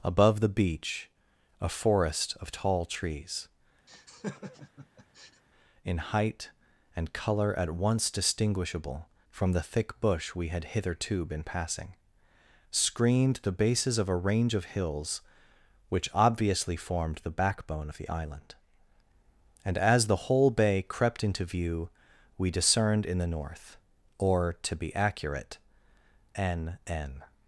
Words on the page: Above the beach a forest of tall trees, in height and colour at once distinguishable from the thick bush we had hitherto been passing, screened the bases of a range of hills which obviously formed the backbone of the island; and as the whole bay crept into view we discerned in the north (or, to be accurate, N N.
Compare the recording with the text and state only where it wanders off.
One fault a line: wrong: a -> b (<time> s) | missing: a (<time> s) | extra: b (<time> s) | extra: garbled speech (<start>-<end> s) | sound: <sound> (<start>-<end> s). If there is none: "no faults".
sound: laugh (3.9-5.4 s)